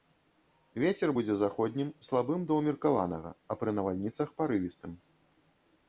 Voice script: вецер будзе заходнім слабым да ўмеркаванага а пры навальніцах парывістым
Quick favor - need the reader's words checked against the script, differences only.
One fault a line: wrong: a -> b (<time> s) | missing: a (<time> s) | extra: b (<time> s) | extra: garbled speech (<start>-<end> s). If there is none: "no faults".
no faults